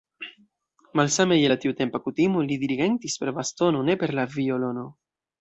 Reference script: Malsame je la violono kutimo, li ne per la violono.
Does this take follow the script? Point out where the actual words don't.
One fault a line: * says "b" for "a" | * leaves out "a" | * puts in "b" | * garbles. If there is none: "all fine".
* says "tiutempa" for "violono"
* puts in "dirigentis per bastono"